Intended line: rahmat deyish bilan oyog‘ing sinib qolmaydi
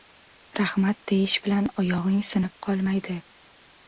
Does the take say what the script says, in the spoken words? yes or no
yes